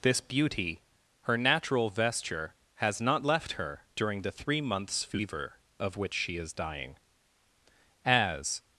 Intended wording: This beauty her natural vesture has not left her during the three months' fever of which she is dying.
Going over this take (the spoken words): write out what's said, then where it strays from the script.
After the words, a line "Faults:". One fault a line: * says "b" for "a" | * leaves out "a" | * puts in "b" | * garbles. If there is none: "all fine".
This beauty her natural vesture has not left her during the three months' fever of which she is dying. As
Faults:
* puts in "As"